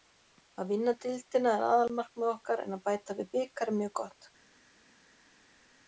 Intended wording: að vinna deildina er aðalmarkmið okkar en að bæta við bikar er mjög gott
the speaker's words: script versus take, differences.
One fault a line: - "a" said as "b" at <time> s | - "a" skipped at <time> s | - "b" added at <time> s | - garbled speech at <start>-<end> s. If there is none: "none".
none